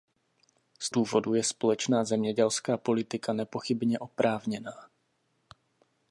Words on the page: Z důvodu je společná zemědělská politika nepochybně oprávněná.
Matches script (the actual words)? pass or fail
pass